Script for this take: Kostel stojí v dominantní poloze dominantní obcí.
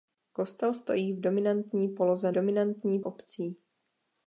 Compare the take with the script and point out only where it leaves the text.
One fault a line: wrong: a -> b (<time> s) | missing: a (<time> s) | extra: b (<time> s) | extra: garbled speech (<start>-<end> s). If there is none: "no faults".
no faults